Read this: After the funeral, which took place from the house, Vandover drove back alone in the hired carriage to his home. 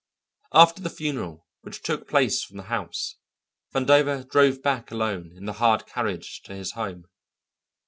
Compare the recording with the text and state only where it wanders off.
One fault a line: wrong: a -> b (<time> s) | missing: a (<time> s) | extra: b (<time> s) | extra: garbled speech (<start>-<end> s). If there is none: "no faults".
no faults